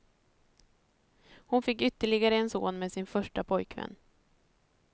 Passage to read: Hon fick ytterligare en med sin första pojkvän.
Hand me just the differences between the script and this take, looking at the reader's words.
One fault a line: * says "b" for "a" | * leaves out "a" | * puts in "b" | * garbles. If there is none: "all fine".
* puts in "son"